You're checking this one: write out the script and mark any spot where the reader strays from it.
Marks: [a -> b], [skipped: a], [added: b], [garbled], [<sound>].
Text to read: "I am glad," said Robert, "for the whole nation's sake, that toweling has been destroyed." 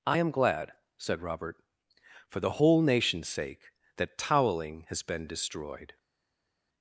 "I am glad," said Robert, "for the whole nation's sake, that toweling has been destroyed."